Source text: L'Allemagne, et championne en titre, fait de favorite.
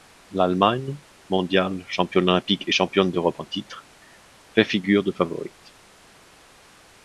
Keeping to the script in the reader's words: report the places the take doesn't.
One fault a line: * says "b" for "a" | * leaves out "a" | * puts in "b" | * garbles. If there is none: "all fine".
* puts in "mondiale championne olympique"
* puts in "d'Europe"
* puts in "figure"